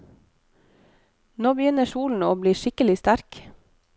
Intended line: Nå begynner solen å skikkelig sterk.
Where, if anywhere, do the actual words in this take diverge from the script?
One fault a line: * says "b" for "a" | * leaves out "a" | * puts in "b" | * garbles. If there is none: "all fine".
* puts in "bli"